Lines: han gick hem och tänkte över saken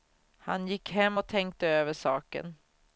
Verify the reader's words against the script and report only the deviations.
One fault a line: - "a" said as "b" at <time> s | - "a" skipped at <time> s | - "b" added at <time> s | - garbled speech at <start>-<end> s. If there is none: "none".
none